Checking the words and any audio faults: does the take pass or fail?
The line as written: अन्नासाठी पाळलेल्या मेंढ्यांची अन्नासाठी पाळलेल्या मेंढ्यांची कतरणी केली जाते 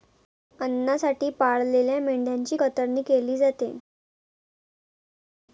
fail